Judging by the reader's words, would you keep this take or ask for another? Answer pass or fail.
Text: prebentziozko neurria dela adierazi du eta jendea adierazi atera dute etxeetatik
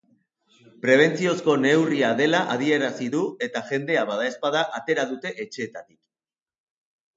fail